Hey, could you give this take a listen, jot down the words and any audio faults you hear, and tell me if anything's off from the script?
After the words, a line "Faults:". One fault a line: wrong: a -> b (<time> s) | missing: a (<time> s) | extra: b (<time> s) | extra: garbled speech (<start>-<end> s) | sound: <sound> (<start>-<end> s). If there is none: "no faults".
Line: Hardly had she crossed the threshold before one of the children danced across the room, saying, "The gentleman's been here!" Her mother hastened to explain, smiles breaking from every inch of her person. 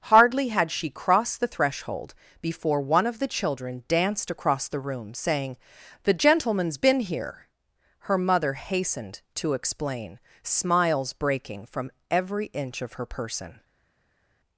Hardly had she crossed the threshold before one of the children danced across the room, saying, "The gentleman's been here!" Her mother hastened to explain, smiles breaking from every inch of her person.
Faults:
no faults